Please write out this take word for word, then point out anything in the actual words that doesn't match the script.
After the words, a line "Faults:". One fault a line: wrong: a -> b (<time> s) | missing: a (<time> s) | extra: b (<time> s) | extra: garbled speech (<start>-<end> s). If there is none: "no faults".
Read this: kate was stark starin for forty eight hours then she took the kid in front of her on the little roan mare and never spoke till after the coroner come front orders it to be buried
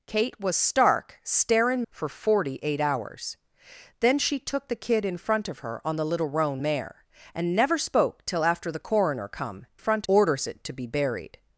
kate was stark starin for forty eight hours then she took the kid in front of her on the little roan mare and never spoke till after the coroner come front orders it to be buried
Faults:
no faults